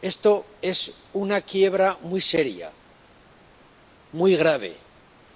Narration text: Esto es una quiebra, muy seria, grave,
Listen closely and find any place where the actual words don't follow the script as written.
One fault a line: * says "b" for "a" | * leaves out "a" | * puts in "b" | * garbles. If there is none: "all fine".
* puts in "muy"